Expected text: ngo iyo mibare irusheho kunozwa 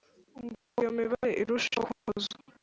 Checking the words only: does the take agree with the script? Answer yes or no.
yes